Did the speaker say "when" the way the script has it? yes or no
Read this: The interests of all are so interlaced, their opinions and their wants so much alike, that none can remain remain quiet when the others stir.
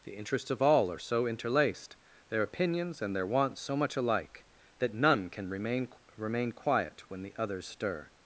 yes